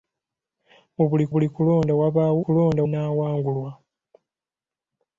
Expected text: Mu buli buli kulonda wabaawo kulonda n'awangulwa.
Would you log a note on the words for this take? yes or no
no